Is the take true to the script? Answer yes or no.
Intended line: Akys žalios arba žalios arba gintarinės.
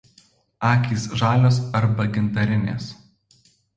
no